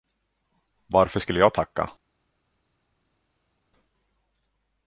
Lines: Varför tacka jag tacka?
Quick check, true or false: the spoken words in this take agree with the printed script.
false